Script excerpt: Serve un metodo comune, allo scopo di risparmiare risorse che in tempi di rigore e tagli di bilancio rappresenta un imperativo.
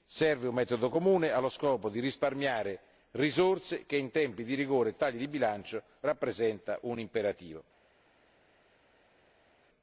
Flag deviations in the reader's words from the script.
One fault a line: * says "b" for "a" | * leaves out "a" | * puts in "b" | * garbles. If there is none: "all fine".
all fine